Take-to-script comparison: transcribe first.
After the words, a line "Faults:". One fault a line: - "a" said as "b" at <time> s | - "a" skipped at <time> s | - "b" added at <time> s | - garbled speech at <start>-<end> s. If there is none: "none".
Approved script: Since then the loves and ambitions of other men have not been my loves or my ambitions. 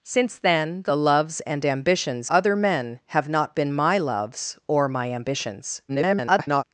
Since then the loves and ambitions other men have not been my loves or my ambitions. [garbled]
Faults:
- "of" skipped at 2.3 s
- garbled speech at 5.9-6.6 s